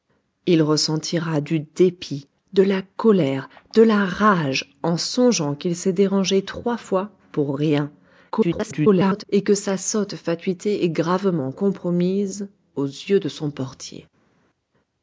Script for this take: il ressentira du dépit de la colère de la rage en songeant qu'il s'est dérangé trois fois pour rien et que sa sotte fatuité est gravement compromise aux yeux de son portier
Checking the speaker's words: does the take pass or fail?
fail